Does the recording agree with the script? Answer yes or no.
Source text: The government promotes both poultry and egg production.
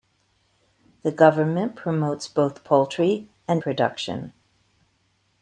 no